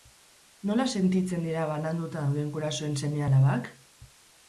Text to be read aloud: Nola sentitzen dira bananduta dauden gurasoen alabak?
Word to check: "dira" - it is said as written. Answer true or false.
true